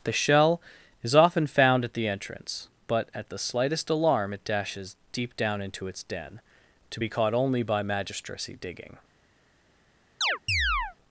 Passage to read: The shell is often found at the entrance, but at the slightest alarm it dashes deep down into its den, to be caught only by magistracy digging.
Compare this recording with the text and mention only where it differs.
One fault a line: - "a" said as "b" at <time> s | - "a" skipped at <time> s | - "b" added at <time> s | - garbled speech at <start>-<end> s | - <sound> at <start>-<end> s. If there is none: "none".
- chirp at 10.2-11.0 s